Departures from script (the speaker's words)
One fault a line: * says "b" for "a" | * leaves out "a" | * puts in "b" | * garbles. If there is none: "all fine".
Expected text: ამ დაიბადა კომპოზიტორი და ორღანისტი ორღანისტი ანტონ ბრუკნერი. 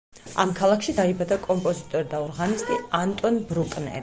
* puts in "ქალაქში"
* leaves out "ორღანისტი"